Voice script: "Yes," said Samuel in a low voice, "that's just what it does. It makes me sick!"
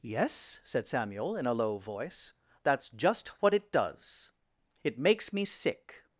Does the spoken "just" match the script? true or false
true